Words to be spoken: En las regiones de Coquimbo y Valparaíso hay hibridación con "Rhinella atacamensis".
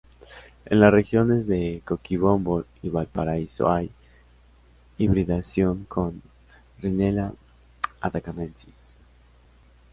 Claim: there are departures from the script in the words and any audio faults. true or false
false